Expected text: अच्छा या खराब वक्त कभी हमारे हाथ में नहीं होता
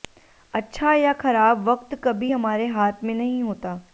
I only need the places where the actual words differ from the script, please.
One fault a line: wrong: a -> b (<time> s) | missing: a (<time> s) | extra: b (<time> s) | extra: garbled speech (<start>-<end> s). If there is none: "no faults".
no faults